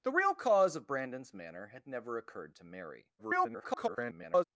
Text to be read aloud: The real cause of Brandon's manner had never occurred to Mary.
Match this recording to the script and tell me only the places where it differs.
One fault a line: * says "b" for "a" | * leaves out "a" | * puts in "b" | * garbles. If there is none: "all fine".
* garbles